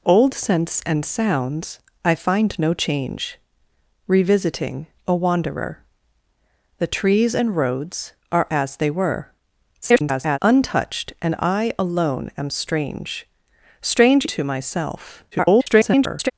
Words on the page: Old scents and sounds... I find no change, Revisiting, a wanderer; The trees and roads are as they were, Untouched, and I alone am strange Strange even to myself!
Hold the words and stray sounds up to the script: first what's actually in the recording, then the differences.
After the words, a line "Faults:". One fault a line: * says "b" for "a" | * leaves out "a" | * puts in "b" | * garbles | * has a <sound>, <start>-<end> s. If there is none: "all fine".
Old scents and sounds... I find no change, Revisiting, a wanderer; The trees and roads are as they were, [garbled] Untouched, and I alone am strange Strange to myself! [garbled]
Faults:
* garbles
* leaves out "even"
* garbles